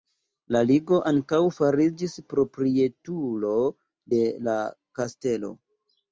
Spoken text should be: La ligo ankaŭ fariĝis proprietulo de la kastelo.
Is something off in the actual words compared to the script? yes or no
no